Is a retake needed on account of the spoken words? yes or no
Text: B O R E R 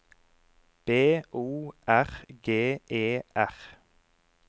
yes